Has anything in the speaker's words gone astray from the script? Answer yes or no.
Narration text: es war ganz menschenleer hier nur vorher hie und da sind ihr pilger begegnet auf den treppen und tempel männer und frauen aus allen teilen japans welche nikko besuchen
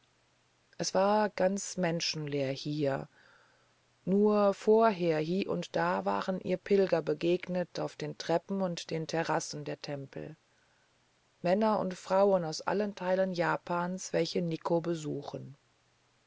yes